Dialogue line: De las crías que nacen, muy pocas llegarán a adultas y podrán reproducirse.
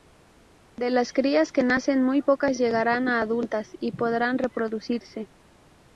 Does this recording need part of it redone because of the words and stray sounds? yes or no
no